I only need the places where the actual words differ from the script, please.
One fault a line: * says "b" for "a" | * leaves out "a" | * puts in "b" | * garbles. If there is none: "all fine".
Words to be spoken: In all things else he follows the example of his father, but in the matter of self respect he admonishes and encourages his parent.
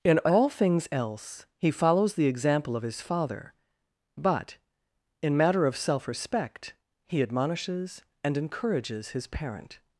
* leaves out "the"